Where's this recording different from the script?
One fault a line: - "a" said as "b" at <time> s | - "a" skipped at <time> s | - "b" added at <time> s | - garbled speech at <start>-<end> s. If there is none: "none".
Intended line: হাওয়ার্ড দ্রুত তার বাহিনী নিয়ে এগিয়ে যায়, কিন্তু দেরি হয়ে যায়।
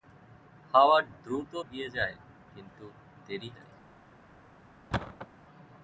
- "তার বাহিনী নিয়ে" skipped at 1.5 s
- "হয়ে" skipped at 3.5 s